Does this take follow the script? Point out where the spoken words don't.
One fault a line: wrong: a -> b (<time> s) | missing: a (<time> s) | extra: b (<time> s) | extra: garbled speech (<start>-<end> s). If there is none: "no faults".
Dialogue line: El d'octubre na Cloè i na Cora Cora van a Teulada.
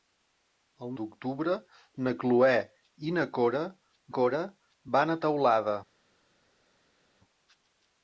no faults